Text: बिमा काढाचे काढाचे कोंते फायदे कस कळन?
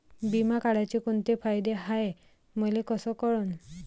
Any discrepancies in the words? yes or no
yes